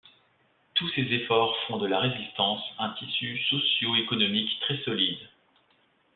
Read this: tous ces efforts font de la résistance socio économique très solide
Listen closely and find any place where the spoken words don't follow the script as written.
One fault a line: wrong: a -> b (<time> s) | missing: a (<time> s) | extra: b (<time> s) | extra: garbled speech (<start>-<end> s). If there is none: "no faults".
extra: un tissu (2.8 s)